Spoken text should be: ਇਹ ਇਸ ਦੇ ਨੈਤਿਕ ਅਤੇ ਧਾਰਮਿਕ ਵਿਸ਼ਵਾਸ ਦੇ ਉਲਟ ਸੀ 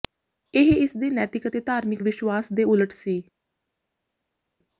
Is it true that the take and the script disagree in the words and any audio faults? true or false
false